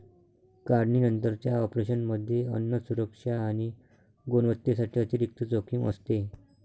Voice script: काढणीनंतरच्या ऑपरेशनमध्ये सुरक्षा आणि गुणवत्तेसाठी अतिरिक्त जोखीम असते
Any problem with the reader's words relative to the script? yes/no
yes